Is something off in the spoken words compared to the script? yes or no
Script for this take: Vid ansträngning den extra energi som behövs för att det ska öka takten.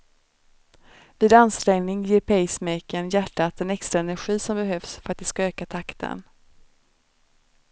yes